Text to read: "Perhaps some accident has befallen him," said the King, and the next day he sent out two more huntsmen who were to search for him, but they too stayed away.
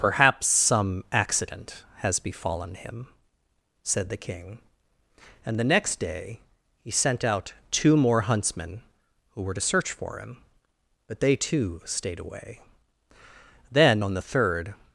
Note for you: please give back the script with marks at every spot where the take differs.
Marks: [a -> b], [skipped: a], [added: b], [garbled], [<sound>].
"Perhaps some accident has befallen him," said the King, and the next day he sent out two more huntsmen who were to search for him, but they too stayed away. [added: Then on the third]